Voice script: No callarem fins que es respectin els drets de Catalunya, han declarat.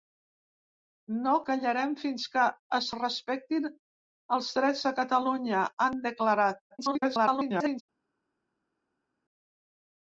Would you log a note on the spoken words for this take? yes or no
yes